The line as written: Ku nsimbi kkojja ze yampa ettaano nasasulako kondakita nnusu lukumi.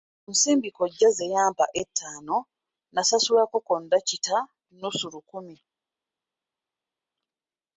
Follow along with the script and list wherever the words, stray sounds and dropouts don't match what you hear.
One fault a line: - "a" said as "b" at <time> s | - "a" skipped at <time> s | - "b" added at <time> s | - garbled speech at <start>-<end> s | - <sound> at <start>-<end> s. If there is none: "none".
none